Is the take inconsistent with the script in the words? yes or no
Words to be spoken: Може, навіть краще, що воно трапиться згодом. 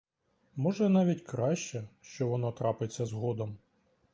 no